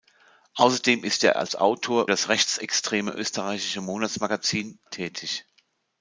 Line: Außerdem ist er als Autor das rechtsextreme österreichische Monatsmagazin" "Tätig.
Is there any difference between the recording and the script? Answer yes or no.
no